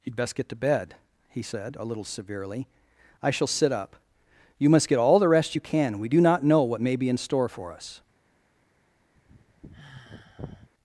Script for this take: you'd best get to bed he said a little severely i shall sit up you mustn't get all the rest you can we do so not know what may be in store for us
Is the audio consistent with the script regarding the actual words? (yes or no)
no